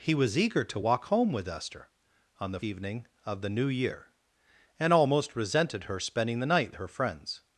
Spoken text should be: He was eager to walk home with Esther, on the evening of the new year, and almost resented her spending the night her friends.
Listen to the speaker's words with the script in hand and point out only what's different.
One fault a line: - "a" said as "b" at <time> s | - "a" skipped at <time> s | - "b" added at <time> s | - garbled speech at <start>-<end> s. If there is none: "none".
none